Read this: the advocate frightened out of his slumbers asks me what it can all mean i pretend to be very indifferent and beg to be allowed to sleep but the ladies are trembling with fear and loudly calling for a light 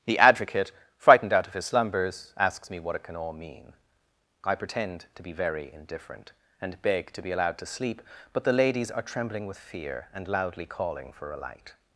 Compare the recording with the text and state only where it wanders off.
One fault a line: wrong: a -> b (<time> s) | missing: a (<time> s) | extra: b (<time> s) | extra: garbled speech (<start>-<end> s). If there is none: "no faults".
no faults